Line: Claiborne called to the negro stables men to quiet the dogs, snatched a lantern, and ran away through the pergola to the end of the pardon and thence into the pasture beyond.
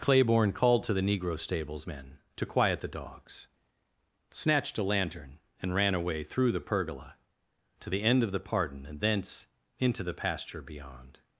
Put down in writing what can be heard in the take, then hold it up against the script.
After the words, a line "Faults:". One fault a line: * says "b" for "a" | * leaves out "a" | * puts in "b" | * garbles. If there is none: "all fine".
Claiborne called to the negro stables men to quiet the dogs, snatched a lantern, and ran away through the pergola to the end of the pardon and thence into the pasture beyond.
Faults:
all fine